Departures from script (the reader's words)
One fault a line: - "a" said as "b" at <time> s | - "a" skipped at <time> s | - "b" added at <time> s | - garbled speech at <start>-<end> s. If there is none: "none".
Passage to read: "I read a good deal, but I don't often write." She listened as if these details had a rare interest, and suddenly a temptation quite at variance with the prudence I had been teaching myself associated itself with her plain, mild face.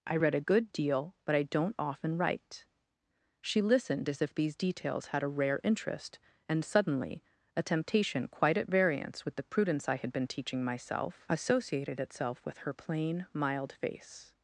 none